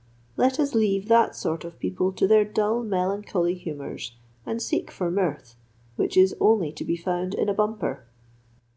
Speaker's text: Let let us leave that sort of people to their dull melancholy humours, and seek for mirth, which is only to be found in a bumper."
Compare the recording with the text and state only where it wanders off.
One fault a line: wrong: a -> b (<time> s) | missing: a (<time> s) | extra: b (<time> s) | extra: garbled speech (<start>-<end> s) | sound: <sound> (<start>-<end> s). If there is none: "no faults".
missing: let (0.6 s)